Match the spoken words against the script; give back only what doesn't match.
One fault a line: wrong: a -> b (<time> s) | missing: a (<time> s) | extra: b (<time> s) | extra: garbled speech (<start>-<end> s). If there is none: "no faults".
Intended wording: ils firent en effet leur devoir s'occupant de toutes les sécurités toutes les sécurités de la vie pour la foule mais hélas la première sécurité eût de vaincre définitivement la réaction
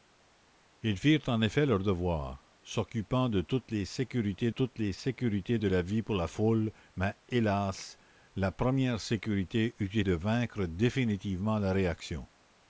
no faults